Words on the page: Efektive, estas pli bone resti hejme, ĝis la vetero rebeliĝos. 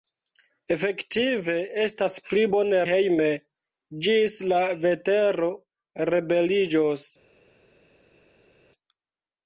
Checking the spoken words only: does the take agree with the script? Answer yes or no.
no